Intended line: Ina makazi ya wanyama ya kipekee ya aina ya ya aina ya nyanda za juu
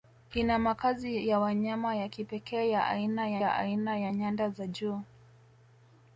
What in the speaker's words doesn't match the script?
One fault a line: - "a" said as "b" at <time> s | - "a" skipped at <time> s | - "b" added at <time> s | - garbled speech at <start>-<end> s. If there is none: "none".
none